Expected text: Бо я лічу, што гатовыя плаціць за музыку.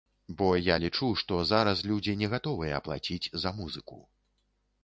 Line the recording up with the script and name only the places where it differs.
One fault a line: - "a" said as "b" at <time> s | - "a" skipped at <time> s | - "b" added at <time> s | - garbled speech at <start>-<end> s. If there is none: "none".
- "зараз людзі не" added at 1.5 s